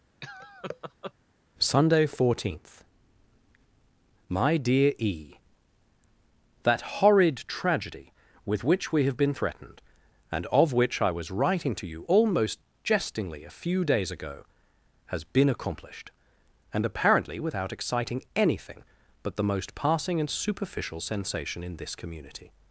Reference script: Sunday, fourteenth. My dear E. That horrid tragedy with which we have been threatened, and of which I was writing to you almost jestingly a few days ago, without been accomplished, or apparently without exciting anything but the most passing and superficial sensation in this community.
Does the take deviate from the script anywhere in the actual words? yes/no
yes